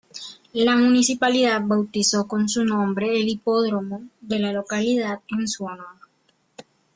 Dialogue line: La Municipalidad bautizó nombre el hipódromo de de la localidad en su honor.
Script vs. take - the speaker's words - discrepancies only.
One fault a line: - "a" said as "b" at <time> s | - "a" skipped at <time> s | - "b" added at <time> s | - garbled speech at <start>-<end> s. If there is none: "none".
- "con su" added at 2.3 s
- "de" skipped at 4.4 s